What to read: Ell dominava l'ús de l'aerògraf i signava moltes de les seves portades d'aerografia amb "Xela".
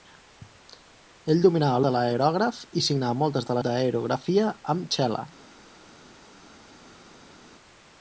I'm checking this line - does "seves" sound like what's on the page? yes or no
no